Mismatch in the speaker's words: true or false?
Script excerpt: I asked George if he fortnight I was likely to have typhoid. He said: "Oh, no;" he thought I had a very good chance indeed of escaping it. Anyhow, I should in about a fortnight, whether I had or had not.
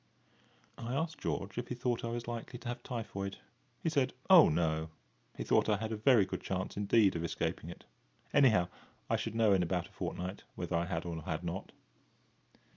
true